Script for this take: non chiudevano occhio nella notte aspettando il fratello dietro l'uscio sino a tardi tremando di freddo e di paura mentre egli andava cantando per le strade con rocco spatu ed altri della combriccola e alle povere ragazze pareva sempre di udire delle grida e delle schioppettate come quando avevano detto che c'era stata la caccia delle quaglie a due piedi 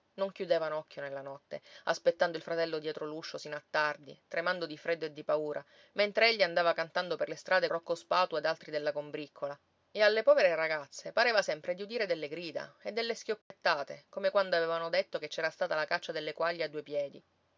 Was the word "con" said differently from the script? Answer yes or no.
yes